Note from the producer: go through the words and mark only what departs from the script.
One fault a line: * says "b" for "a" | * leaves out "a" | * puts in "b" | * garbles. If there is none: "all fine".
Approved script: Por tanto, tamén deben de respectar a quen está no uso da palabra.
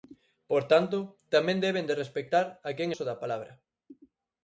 * leaves out "está no"